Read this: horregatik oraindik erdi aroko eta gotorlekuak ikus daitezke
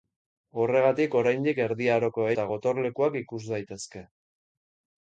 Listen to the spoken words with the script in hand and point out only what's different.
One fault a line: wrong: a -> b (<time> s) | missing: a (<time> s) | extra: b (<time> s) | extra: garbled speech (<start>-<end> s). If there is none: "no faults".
no faults